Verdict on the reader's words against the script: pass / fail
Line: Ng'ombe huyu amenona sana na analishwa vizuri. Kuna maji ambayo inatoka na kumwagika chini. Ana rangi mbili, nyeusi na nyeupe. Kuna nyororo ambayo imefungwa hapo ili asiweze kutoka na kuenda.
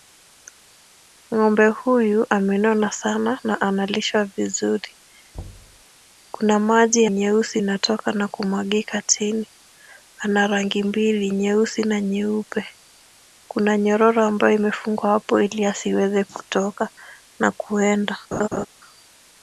fail